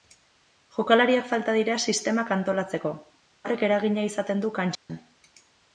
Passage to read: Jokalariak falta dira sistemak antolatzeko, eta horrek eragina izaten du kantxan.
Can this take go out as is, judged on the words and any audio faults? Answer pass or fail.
fail